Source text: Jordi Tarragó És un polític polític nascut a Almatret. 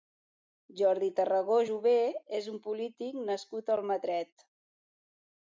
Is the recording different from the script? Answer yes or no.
yes